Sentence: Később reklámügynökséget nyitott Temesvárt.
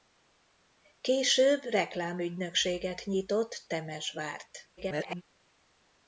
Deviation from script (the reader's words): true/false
true